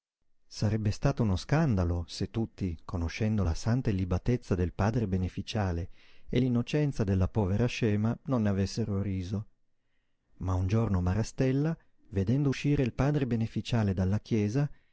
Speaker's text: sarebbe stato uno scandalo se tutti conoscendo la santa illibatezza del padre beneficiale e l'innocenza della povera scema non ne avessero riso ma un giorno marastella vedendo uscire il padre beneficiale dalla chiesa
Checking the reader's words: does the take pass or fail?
pass